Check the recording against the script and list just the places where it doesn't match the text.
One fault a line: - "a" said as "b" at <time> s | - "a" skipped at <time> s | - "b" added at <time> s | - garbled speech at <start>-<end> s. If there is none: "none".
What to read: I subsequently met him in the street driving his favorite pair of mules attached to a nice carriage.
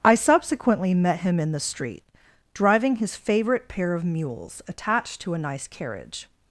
none